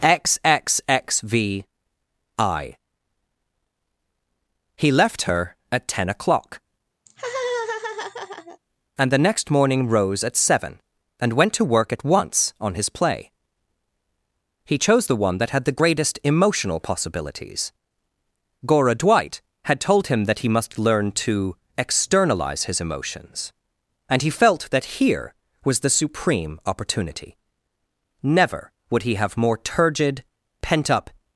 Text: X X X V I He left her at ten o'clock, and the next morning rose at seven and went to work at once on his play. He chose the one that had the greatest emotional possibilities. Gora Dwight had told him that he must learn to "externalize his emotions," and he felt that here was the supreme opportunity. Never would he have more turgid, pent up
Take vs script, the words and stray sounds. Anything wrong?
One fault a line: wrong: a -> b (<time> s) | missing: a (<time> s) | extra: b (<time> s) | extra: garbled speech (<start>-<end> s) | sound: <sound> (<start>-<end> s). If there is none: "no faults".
sound: laugh (7.1-8.6 s)